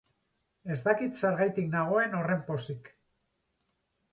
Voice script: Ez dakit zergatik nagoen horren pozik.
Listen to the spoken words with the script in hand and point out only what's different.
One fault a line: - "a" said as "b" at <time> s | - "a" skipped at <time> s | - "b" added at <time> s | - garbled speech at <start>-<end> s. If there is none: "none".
none